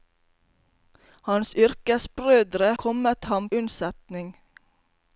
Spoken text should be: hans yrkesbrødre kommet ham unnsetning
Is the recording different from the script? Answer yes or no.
no